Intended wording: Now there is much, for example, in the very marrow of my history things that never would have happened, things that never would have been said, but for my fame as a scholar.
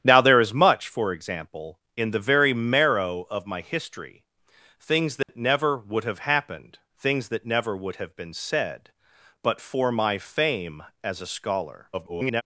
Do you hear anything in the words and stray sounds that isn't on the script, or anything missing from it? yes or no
yes